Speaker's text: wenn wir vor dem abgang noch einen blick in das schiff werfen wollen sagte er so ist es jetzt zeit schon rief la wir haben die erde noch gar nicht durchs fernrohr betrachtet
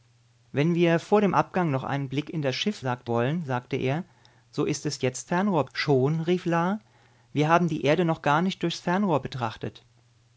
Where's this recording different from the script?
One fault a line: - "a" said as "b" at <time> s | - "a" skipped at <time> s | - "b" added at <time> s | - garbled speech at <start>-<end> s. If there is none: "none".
- "werfen" said as "sagte" at 2.8 s
- "zeit" said as "fernrohr" at 5.2 s